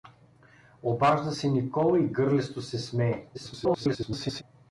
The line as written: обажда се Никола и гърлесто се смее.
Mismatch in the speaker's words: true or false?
true